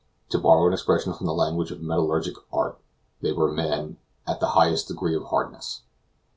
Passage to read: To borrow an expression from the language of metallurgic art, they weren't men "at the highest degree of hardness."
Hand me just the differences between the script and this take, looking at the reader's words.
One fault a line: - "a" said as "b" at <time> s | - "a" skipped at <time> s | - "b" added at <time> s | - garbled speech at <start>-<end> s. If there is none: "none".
- "weren't" said as "were" at 3.3 s